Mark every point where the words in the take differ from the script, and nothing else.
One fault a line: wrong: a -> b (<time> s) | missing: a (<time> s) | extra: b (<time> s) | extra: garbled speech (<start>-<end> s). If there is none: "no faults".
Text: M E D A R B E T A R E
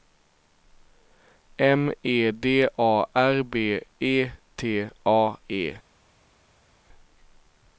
missing: R (5.3 s)